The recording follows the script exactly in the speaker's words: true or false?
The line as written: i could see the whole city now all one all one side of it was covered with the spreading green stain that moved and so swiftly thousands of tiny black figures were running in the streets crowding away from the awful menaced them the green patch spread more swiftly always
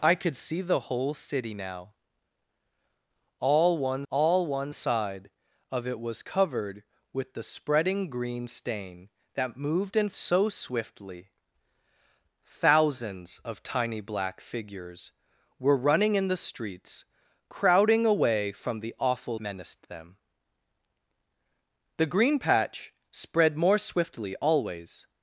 true